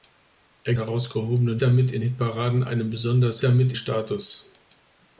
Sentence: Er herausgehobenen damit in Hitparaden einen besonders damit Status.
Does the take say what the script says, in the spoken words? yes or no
yes